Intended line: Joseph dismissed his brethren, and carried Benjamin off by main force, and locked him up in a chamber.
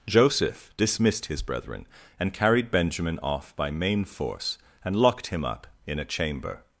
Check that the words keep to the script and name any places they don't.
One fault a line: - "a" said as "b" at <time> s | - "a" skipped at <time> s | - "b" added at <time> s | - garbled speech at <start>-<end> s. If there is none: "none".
none